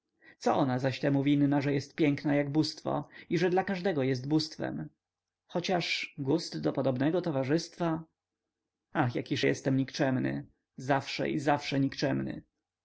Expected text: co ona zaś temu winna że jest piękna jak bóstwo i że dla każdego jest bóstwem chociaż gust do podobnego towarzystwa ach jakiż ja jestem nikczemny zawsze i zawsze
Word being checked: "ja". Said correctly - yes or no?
no